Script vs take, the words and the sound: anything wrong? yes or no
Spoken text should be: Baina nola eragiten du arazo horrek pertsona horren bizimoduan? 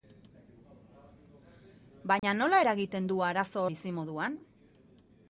yes